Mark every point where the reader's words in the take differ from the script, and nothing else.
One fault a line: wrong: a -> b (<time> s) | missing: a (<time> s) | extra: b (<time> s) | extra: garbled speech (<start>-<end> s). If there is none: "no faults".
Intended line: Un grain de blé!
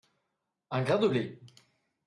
no faults